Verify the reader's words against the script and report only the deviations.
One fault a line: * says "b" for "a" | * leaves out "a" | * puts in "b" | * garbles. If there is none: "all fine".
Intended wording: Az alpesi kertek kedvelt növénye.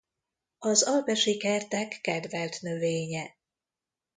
all fine